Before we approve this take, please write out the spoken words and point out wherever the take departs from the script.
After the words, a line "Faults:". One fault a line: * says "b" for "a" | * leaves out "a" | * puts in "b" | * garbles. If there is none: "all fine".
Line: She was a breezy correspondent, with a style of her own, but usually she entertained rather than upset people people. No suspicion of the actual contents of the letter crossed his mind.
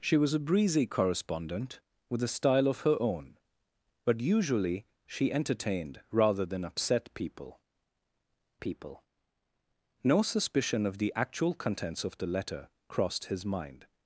She was a breezy correspondent, with a style of her own, but usually she entertained rather than upset people people. No suspicion of the actual contents of the letter crossed his mind.
Faults:
all fine